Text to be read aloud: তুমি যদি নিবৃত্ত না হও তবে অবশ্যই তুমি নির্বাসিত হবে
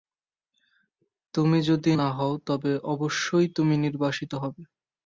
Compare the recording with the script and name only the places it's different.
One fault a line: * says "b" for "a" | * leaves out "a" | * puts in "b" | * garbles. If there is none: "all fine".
* leaves out "নিবৃত্ত"